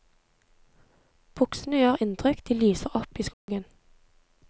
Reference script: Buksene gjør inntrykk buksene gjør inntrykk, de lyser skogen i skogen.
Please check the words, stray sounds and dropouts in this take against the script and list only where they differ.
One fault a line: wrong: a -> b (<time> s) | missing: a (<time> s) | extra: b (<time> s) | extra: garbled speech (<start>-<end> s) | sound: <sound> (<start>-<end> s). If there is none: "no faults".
missing: buksene gjør inntrykk (2.4 s)
wrong: skogen -> opp (3.0 s)
sound: dropout (3.3-3.5 s)